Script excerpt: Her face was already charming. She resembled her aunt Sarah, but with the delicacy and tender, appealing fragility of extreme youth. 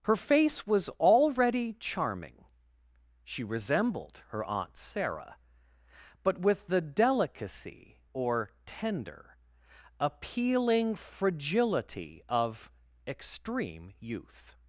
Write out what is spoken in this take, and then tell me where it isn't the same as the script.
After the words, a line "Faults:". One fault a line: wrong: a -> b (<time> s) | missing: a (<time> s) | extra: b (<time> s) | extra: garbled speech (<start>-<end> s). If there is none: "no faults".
Her face was already charming. She resembled her aunt Sarah, but with the delicacy or tender, appealing fragility of extreme youth.
Faults:
wrong: and -> or (8.1 s)